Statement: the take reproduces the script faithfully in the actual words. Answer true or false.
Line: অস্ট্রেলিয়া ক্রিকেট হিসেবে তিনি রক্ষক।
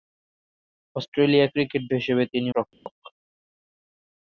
true